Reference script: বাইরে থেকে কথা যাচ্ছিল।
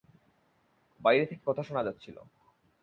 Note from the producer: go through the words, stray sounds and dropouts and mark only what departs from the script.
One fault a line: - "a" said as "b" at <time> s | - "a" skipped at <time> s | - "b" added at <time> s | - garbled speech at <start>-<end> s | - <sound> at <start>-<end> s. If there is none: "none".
- "শোনা" added at 1.6 s